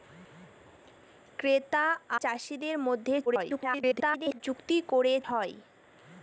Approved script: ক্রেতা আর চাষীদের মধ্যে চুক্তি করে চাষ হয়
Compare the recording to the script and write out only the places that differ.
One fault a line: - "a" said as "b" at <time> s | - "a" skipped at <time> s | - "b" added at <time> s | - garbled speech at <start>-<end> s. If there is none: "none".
- "আর" skipped at 1.9 s
- garbled speech at 3.3-4.4 s
- "চাষ" skipped at 5.1 s